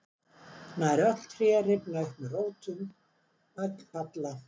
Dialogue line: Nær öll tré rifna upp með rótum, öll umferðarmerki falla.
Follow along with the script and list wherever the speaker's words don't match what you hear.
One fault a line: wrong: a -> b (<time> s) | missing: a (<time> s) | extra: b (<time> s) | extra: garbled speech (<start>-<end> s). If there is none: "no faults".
missing: umferðarmerki (3.7 s)